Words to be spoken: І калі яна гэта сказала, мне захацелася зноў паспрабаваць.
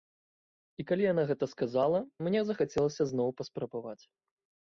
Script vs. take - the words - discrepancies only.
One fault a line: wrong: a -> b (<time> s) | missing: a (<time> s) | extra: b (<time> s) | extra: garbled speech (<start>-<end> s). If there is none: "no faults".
no faults